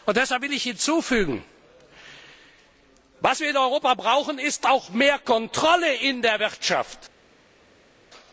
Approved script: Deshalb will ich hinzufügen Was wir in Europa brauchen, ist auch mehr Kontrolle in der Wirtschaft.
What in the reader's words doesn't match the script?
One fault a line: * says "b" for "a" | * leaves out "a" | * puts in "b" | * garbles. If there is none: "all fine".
all fine